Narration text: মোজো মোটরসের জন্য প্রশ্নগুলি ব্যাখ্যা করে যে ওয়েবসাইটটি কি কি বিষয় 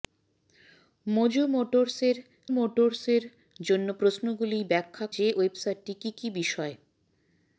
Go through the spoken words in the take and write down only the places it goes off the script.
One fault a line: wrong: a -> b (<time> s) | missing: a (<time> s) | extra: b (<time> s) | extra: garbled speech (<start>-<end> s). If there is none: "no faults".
extra: মোটরসের (2.5 s)
missing: করে (5.1 s)